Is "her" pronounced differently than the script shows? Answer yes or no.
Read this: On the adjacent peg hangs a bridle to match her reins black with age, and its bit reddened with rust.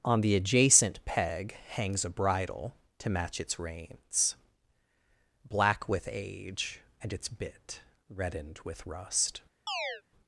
yes